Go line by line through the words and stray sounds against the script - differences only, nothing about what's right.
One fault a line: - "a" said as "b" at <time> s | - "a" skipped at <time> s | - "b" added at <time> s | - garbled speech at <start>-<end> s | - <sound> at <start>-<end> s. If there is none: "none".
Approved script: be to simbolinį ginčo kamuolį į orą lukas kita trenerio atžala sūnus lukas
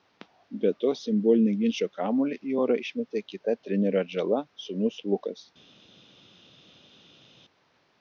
- "lukas" said as "išmetė" at 2.9 s